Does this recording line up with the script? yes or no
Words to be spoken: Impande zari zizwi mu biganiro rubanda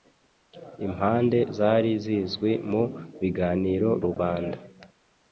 yes